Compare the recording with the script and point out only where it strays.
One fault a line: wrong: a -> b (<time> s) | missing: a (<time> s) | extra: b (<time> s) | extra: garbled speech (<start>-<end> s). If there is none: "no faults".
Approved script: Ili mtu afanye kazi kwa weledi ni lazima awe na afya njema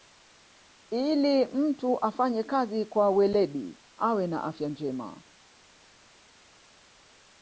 missing: ni lazima (3.8 s)